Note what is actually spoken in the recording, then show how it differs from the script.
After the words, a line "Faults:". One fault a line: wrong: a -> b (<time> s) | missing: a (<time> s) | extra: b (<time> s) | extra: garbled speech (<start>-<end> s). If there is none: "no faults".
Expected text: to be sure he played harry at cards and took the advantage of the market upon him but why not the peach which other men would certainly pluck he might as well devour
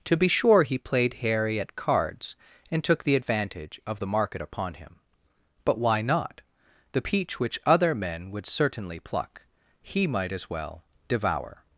to be sure he played harry at cards and took the advantage of the market upon him but why not the peach which other men would certainly pluck he might as well devour
Faults:
no faults